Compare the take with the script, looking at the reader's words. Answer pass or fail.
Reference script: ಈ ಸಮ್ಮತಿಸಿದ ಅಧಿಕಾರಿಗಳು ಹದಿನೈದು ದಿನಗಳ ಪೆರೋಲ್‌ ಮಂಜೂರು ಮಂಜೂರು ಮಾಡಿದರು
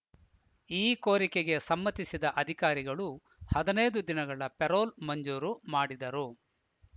fail